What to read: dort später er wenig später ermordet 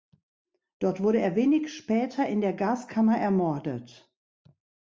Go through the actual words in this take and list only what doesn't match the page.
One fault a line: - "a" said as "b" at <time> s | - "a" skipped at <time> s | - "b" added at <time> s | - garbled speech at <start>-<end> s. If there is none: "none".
- "später" said as "wurde" at 1.0 s
- "in der gaskammer" added at 2.3 s